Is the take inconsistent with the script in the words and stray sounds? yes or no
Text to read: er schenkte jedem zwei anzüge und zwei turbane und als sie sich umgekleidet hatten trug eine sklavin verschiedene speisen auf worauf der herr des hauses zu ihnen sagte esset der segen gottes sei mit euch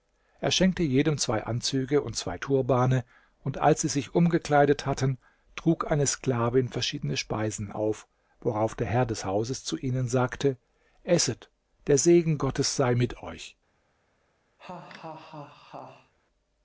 yes